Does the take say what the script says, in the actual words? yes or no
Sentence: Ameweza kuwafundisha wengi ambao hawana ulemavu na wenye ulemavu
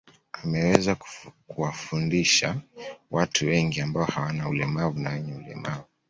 no